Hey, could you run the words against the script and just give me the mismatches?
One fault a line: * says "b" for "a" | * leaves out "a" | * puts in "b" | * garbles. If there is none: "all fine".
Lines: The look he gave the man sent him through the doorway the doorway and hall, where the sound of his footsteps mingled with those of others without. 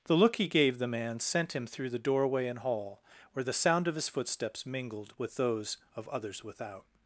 * leaves out "the doorway"